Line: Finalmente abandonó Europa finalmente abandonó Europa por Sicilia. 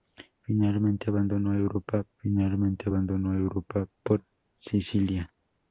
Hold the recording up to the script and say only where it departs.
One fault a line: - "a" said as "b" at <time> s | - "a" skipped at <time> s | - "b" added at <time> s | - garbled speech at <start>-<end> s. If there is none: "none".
none